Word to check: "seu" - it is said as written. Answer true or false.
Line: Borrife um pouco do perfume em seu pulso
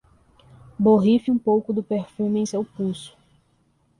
true